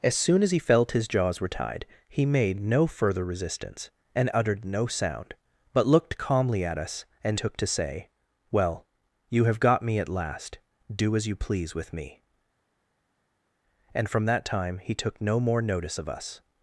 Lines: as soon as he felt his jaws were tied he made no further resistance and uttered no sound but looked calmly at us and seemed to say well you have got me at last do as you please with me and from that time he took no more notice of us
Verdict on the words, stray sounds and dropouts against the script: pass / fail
fail